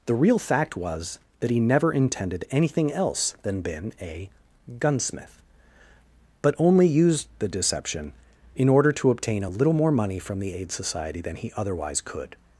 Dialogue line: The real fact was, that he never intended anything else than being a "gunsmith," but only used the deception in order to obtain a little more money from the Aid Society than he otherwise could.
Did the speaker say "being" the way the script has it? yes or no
no